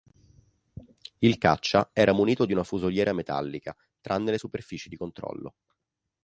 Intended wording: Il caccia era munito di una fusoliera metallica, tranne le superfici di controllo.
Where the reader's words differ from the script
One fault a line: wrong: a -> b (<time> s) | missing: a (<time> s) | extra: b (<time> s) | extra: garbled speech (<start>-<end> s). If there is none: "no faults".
no faults